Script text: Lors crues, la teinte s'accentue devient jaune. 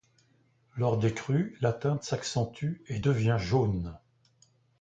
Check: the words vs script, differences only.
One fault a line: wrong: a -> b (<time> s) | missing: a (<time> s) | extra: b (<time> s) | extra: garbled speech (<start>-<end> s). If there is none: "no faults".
extra: des (1.0 s)
extra: et (2.9 s)